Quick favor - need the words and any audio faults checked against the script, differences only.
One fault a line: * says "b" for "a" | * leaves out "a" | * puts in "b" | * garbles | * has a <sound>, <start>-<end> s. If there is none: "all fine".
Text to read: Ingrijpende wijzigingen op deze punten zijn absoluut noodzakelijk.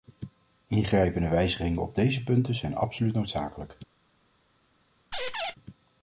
* has a squeak, 5.1-5.5 s